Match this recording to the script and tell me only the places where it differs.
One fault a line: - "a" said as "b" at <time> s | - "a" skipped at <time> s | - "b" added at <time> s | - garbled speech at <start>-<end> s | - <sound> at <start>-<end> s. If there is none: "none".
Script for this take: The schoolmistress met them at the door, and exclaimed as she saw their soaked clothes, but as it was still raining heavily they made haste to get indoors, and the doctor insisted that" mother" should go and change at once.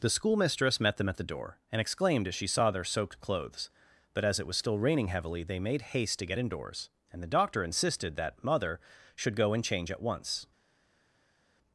none